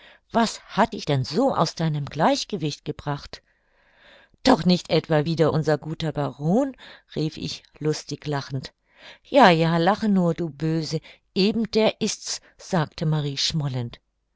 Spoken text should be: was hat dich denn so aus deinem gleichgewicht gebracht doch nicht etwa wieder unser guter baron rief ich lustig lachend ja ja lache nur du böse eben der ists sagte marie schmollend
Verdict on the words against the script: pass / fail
pass